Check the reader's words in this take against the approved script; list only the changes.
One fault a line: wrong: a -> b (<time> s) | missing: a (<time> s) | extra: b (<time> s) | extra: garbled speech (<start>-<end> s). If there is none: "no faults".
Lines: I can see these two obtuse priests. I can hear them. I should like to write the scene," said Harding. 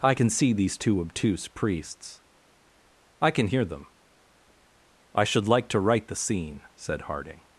no faults